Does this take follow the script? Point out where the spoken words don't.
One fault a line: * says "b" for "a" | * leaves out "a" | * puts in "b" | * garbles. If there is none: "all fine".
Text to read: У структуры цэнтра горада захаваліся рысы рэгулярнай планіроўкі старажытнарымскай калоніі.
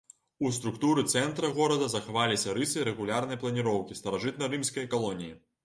all fine